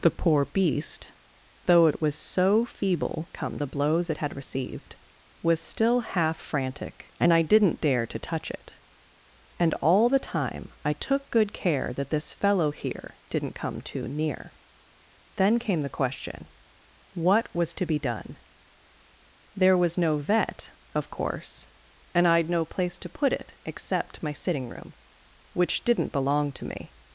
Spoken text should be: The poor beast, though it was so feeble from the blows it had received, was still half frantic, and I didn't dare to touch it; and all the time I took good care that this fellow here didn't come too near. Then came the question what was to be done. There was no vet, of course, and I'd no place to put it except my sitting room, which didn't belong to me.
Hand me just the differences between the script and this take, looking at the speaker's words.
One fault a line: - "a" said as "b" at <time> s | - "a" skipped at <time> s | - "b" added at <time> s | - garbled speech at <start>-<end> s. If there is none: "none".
- "from" said as "come" at 3.3 s